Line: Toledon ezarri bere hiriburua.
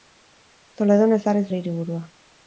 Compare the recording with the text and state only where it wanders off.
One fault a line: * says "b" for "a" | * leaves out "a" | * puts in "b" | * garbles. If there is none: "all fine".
all fine